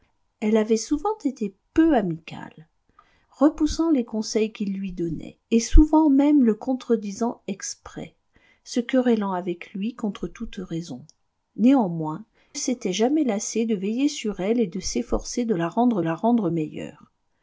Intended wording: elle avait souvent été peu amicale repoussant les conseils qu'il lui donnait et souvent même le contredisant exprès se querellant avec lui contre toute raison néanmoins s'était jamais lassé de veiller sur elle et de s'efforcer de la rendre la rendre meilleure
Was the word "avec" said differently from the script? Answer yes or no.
no